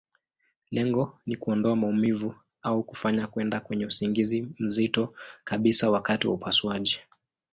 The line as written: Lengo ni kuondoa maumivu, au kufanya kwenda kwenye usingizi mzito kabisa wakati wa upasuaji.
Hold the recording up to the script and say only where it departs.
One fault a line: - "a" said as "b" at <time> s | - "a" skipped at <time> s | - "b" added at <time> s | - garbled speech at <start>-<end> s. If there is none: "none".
none